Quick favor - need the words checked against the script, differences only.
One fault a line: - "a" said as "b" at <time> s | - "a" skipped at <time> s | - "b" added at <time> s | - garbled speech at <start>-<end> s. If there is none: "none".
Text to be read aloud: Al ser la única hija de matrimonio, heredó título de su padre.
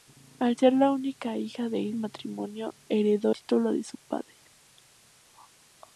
none